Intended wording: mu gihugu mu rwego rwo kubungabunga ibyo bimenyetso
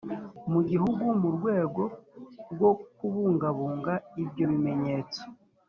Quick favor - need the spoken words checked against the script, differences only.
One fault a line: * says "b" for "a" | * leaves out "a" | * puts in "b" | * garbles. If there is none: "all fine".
all fine